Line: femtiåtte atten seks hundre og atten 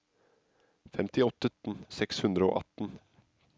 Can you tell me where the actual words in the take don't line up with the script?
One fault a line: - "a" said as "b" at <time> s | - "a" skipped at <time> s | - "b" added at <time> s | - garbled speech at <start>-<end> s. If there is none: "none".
none